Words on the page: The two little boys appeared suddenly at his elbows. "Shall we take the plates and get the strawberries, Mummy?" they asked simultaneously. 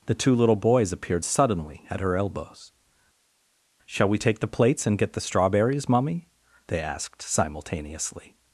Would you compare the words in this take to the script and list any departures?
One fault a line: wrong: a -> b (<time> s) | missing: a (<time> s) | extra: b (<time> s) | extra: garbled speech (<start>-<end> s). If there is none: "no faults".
wrong: his -> her (2.0 s)